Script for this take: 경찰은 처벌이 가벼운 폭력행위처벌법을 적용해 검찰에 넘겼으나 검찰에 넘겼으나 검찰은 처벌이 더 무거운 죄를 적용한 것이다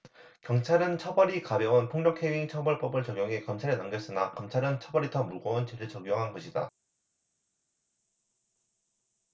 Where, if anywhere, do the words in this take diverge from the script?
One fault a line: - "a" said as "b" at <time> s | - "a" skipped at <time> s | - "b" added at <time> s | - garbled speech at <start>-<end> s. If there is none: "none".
- "검찰에 넘겼으나" skipped at 4.3 s